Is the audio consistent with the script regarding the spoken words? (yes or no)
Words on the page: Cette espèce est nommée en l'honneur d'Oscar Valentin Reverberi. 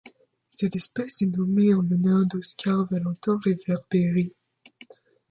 yes